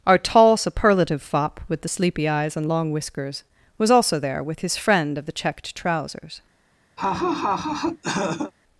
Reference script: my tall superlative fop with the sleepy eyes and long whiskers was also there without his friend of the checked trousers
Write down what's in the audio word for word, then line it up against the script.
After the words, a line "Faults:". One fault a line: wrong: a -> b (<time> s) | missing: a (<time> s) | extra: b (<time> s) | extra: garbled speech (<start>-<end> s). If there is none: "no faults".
our tall superlative fop with the sleepy eyes and long whiskers was also there with his friend of the checked trousers
Faults:
wrong: my -> our (0.1 s)
wrong: without -> with (4.4 s)